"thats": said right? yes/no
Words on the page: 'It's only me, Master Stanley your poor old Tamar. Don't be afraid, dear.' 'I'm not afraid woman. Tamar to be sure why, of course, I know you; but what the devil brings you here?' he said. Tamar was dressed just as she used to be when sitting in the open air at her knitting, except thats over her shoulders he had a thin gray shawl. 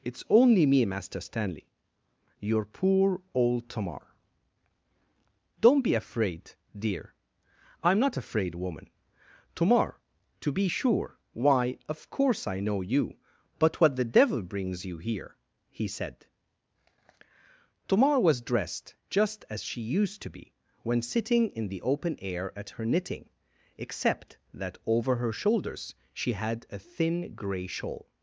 no